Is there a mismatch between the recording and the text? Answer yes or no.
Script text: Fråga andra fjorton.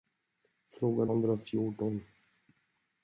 no